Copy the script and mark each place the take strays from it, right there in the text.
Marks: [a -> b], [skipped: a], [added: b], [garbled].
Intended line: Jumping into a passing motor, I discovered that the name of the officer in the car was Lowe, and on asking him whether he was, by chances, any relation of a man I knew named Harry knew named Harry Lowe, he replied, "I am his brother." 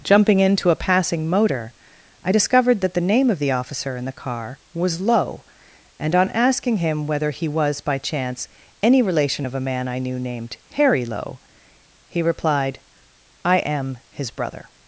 Jumping into a passing motor, I discovered that the name of the officer in the car was Lowe, and on asking him whether he was, by [chances, -> chance] any relation of a man I knew named Harry [skipped: knew named Harry] Lowe, he replied, "I am his brother."